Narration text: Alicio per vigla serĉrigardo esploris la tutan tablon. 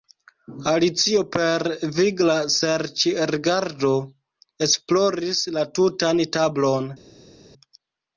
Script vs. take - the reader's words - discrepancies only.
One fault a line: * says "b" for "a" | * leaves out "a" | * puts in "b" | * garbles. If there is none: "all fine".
all fine